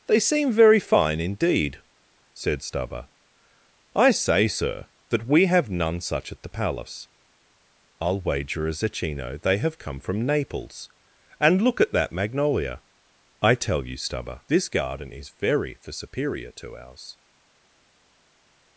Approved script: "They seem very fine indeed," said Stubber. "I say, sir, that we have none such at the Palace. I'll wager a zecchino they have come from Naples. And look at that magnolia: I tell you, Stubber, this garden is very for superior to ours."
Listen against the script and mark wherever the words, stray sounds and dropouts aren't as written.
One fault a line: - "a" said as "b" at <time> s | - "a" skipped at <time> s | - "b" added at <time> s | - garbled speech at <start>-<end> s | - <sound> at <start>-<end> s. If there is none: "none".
none